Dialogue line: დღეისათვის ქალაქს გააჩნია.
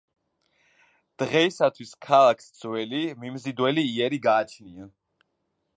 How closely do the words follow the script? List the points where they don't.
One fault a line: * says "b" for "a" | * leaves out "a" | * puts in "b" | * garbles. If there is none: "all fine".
* puts in "ძველი მიმზიდველი იერი"